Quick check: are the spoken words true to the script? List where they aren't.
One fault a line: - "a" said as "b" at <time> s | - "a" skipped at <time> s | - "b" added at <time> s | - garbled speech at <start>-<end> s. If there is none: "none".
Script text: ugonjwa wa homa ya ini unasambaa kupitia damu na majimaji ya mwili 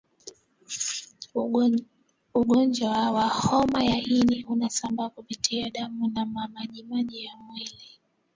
none